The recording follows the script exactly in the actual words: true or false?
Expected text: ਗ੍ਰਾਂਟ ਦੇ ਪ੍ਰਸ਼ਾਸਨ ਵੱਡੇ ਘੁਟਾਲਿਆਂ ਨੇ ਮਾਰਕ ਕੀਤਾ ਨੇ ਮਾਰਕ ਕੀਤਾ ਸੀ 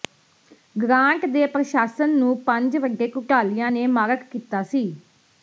false